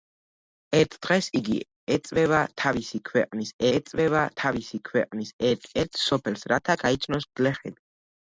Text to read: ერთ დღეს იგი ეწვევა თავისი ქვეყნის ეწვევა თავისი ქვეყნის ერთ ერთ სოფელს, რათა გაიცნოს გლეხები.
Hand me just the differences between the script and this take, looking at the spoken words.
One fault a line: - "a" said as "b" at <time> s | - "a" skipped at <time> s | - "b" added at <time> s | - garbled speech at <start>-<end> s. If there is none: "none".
none